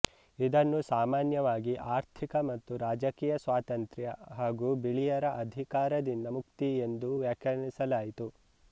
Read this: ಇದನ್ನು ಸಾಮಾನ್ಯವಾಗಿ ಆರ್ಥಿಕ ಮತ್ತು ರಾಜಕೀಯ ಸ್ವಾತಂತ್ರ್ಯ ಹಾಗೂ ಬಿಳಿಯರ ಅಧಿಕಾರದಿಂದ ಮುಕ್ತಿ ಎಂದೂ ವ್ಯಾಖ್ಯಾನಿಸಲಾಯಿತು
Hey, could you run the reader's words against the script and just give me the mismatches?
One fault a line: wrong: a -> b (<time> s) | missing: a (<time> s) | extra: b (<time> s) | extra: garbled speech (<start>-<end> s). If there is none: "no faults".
no faults